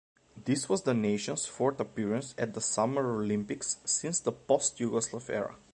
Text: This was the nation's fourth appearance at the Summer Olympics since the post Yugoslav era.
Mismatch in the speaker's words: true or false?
false